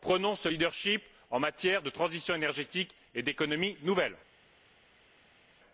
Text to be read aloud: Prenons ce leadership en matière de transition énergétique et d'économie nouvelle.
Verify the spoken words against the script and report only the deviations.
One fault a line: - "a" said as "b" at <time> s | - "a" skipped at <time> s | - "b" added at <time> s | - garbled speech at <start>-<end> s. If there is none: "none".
none